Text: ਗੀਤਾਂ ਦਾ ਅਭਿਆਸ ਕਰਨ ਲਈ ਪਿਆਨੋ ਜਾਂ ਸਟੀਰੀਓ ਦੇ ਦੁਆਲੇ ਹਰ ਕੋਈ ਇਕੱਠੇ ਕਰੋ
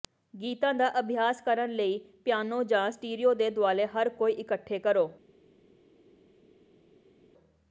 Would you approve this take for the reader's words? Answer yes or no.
yes